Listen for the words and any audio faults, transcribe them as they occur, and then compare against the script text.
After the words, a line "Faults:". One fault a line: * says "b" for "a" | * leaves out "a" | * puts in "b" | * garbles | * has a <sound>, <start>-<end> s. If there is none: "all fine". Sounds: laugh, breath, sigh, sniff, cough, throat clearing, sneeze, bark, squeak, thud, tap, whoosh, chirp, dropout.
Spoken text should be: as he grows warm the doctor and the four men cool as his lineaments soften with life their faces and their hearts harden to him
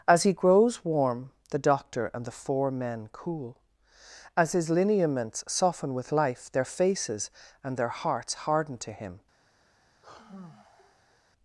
as he grows warm the doctor and the four men cool as his lineaments soften with life their faces and their hearts harden to him
Faults:
* has a sigh, 10.0-11.2 s